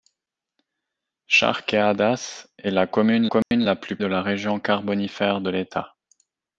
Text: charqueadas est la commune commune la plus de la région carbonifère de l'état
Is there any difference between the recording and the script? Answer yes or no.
no